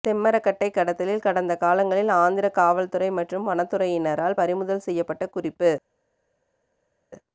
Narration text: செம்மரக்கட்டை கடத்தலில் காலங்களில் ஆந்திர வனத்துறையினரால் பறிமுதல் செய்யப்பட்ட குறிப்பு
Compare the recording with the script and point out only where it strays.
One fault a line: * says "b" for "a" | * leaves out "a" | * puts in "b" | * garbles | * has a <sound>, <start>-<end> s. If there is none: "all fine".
* puts in "கடந்த"
* puts in "காவல்துறை மற்றும்"